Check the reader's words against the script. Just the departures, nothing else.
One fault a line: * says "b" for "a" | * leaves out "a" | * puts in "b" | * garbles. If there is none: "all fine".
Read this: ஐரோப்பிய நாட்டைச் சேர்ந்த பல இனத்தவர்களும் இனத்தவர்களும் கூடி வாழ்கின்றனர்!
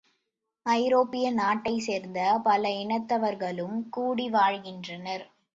* leaves out "இனத்தவர்களும்"